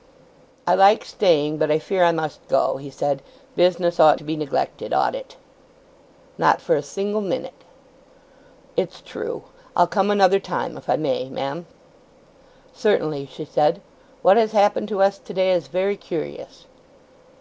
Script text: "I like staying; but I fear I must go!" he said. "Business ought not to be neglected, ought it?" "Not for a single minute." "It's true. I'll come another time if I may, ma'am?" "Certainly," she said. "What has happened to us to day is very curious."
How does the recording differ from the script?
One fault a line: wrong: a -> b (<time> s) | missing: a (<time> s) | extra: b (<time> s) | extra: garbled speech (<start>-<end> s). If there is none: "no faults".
missing: not (4.2 s)